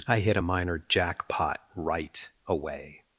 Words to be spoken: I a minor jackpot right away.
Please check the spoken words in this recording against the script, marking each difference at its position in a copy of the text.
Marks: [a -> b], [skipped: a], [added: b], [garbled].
I [added: hit] a minor jackpot right away.